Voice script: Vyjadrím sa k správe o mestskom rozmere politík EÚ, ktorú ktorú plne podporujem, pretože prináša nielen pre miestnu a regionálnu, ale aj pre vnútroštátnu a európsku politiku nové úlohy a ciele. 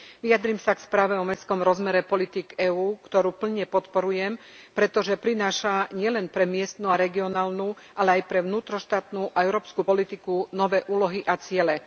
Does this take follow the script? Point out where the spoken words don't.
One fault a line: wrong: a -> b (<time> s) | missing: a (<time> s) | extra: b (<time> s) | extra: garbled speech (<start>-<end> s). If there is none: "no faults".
missing: ktorú (3.3 s)